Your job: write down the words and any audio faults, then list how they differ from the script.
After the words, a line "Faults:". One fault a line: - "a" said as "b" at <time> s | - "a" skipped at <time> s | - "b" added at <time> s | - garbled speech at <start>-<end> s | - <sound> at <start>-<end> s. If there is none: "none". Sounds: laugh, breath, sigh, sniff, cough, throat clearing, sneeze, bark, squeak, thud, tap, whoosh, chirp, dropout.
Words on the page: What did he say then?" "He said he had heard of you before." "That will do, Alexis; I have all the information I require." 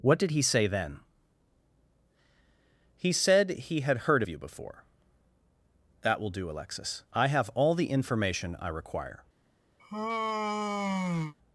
What did he say then?" "He said he had heard of you before." "That will do, Alexis; I have all the information I require."
Faults:
- sigh at 9.8-11.3 s